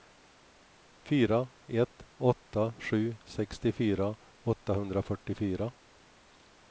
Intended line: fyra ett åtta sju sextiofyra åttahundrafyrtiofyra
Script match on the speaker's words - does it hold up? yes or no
yes